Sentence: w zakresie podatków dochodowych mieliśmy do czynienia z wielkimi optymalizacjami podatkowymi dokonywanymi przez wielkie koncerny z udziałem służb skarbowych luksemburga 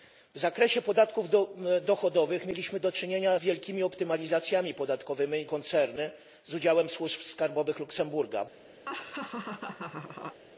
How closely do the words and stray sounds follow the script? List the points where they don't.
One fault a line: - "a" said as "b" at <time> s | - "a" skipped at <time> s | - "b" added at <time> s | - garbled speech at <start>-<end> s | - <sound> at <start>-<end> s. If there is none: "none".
- "z" skipped at 3.4 s
- "dokonywanymi przez wielkie" skipped at 5.5 s
- laugh at 8.9-10.4 s